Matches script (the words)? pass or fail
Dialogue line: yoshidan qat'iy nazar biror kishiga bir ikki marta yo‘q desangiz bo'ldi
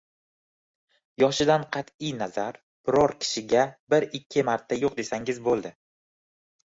pass